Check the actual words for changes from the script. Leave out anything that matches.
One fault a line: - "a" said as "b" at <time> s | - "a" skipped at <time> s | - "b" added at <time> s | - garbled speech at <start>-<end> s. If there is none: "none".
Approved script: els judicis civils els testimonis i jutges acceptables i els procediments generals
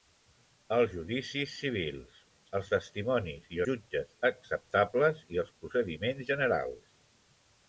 none